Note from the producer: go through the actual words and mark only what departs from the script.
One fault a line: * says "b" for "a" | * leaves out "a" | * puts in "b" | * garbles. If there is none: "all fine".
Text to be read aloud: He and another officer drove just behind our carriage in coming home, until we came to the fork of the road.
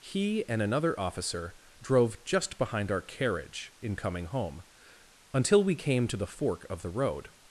all fine